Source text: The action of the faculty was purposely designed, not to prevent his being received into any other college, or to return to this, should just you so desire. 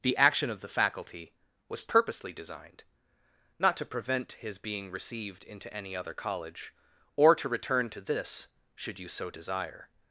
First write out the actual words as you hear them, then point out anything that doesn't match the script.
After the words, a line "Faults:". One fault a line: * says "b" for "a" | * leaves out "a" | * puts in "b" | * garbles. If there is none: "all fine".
The action of the faculty was purposely designed, not to prevent his being received into any other college, or to return to this, should you so desire.
Faults:
* leaves out "just"